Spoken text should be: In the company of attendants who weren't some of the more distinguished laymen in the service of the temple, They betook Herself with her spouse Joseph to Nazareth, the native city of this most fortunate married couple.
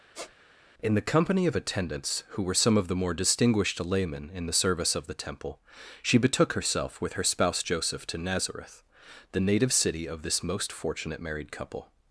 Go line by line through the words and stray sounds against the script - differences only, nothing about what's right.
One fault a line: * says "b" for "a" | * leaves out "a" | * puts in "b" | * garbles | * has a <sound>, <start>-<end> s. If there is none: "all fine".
* has a squeak, 0.1-0.3 s
* says "were" for "weren't"
* says "She" for "They"